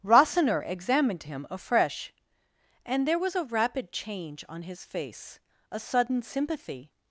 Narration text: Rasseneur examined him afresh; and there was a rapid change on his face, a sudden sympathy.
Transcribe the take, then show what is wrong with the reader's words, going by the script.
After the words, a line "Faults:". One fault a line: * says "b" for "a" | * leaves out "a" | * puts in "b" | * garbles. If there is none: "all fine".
Rasseneur examined him afresh; and there was a rapid change on his face, a sudden sympathy.
Faults:
all fine